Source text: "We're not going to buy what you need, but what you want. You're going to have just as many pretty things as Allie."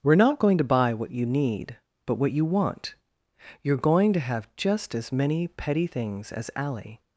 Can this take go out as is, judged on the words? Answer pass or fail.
fail